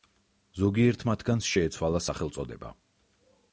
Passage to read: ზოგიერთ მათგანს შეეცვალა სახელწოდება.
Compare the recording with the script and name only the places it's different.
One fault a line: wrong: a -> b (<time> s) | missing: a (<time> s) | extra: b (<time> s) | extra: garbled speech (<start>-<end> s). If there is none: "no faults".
no faults